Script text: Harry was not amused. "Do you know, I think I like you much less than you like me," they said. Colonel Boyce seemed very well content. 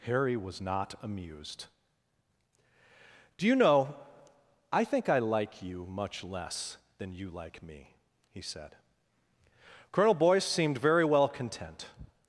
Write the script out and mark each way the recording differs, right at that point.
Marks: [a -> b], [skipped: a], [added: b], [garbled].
Harry was not amused. "Do you know, I think I like you much less than you like me," [they -> he] said. Colonel Boyce seemed very well content.